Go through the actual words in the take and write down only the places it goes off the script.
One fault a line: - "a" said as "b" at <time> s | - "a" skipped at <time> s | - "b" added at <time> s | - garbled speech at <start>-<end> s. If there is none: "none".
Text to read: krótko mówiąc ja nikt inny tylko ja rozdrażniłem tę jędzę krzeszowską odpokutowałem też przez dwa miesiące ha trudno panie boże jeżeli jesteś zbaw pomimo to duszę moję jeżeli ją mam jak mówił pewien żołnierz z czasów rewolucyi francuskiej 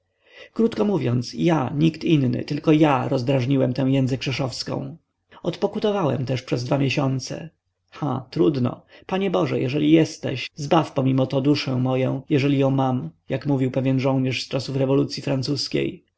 none